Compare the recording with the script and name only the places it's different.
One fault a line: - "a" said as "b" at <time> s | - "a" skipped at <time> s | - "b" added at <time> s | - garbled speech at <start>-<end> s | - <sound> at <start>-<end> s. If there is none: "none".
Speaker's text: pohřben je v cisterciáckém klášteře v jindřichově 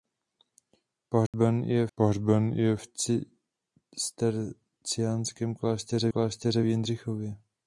- dropout at 1.3-1.3 s
- "pohřben je" added at 1.9 s
- "klášteře" added at 6.1 s